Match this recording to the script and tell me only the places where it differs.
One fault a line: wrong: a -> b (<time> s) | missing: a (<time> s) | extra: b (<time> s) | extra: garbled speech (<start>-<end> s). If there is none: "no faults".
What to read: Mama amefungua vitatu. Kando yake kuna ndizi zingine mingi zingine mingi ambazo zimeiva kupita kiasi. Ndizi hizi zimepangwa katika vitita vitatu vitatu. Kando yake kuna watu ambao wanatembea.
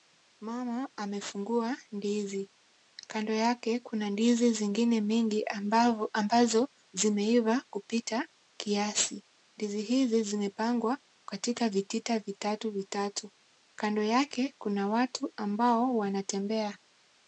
wrong: vitatu -> ndizi (1.9 s)
missing: zingine mingi (5.4 s)